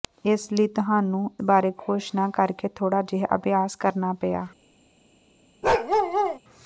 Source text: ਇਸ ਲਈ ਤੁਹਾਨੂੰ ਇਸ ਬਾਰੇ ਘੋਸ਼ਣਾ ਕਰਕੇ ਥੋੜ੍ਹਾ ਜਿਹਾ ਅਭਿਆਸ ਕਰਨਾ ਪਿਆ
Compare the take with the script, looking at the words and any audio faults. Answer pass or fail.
fail